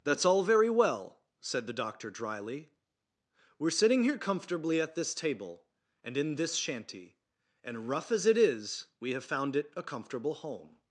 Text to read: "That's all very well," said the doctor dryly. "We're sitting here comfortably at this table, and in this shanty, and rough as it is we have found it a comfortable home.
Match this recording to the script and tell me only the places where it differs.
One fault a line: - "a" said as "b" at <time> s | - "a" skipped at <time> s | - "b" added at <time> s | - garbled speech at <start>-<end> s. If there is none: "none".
none